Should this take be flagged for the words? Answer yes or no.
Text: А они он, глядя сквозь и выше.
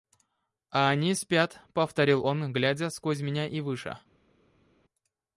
yes